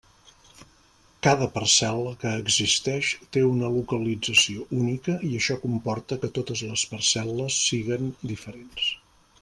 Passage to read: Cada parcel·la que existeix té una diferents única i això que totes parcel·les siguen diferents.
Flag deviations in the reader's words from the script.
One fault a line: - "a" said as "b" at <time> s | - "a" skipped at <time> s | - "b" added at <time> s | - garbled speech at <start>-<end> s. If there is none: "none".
- "diferents" said as "localització" at 3.8 s
- "comporta" added at 5.7 s
- "les" added at 6.7 s